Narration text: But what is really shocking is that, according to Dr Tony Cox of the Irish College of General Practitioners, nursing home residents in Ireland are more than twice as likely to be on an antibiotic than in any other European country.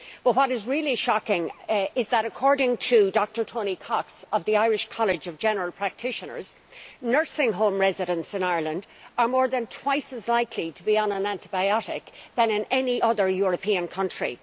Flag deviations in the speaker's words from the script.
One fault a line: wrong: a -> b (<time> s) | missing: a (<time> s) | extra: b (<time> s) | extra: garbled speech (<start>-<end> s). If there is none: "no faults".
no faults